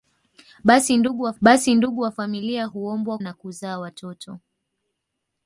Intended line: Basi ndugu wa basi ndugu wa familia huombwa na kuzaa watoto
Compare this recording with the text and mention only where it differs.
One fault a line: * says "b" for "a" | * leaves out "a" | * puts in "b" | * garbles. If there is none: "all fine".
all fine